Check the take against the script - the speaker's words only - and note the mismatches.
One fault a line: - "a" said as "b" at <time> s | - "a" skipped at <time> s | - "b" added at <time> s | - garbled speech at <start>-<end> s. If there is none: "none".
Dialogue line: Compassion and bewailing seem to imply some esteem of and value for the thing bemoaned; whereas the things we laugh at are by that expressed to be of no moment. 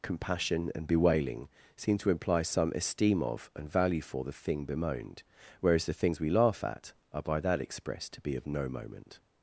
none